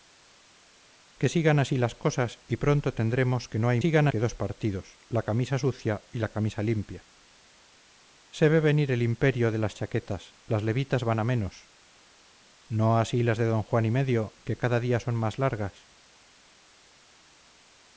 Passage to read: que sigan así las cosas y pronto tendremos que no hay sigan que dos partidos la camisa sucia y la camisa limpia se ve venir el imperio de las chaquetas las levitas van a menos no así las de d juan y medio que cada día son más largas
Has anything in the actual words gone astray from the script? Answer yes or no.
no